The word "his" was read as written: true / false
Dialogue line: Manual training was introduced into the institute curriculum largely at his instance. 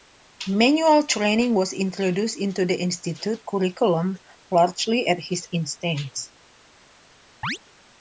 true